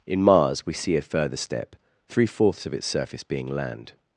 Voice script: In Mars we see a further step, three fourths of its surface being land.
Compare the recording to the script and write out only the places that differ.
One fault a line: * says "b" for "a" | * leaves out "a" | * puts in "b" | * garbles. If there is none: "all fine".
all fine